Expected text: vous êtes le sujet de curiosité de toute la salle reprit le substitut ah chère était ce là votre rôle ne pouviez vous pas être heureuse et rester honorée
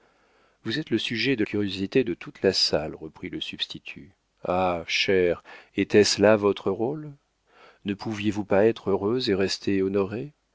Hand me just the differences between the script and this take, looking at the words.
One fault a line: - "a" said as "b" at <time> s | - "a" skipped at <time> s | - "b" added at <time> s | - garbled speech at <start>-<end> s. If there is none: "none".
none